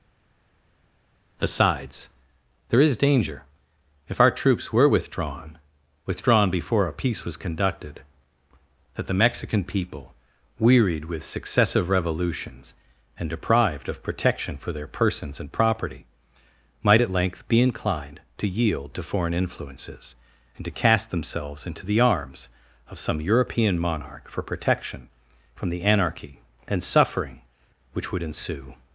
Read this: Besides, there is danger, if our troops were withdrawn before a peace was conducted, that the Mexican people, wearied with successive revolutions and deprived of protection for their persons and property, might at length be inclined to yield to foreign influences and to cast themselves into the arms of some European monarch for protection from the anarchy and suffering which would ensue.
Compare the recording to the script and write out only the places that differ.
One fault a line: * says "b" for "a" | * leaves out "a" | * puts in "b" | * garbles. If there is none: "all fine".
* puts in "withdrawn"